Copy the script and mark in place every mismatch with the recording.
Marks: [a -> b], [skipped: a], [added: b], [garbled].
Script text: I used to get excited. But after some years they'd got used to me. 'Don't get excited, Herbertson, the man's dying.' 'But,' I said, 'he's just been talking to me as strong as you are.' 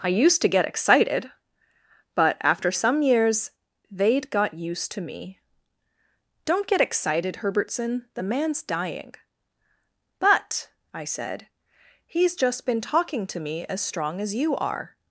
I used to get excited. But after some years they'd got used to me. 'Don't get excited, Herbertson, the man's dying.' 'But,' I said, 'he's just been talking to me as strong as you are.'